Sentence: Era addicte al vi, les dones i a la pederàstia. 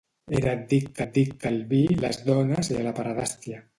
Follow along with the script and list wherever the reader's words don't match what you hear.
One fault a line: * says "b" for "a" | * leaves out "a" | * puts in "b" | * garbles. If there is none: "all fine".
* puts in "addicte"